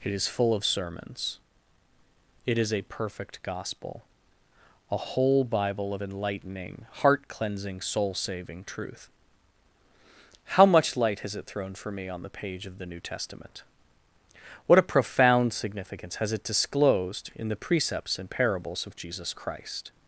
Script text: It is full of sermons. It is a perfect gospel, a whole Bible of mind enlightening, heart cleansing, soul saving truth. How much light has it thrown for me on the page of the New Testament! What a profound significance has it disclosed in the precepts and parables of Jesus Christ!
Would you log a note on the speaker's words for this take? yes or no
yes